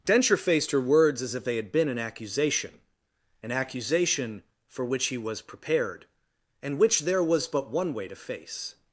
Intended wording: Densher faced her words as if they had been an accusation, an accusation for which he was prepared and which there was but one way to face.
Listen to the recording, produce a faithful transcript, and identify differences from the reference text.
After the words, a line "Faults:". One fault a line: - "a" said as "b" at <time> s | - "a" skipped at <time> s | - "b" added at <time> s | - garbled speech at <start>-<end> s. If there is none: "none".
Densher faced her words as if they had been an accusation, an accusation for which he was prepared and which there was but one way to face.
Faults:
none